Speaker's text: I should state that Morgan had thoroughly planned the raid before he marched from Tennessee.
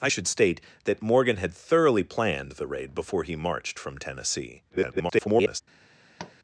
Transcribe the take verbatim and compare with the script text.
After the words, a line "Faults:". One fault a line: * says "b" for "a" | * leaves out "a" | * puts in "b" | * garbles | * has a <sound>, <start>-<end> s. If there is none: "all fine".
I should state that Morgan had thoroughly planned the raid before he marched from Tennessee. [garbled]
Faults:
* garbles
* has a tap, 6.2-6.4 s